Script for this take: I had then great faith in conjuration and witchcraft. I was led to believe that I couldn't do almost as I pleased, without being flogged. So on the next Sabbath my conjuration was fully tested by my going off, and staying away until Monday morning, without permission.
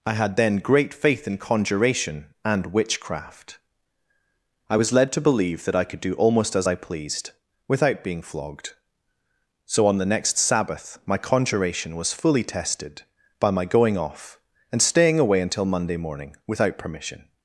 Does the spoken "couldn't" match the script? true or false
false